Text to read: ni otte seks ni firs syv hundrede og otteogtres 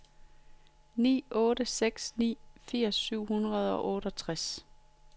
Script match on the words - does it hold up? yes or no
yes